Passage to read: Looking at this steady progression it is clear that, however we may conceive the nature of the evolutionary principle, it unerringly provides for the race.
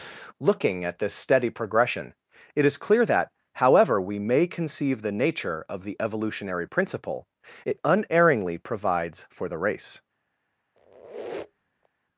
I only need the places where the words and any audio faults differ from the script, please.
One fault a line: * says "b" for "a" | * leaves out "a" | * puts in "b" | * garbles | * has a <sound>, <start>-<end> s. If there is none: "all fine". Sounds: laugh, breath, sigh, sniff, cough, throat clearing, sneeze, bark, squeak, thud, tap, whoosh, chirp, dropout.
* has a squeak, 10.8-11.9 s